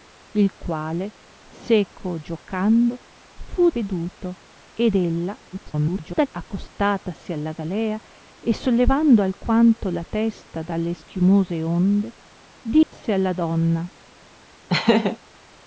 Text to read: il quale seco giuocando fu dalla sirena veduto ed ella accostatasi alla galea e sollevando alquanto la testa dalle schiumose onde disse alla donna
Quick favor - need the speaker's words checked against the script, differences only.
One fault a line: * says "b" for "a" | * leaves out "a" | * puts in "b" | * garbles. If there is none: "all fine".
* leaves out "dalla sirena"
* garbles